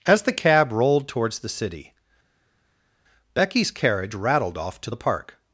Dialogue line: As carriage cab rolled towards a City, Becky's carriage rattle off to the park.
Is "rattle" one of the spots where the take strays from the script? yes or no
yes